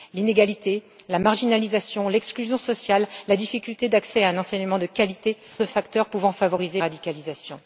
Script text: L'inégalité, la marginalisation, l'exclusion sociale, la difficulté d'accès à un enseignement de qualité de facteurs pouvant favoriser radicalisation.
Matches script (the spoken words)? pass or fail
pass